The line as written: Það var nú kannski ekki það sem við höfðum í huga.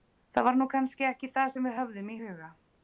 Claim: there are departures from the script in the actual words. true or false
false